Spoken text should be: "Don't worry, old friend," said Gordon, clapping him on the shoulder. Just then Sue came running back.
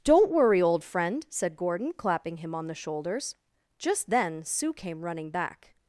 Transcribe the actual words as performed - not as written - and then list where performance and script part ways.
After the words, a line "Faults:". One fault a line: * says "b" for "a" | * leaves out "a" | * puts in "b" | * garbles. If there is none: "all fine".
"Don't worry, old friend," said Gordon, clapping him on the shoulders. Just then Sue came running back.
Faults:
* says "shoulders" for "shoulder"